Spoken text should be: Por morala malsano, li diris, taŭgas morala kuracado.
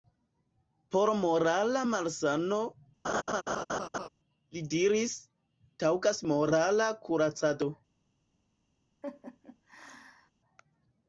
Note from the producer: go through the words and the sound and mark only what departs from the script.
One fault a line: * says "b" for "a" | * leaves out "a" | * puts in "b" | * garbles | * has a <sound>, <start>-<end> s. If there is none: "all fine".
* has a laugh, 3.0-4.1 s
* has a laugh, 9.0-10.3 s